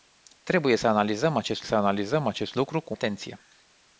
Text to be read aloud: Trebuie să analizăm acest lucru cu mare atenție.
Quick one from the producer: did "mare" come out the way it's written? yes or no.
no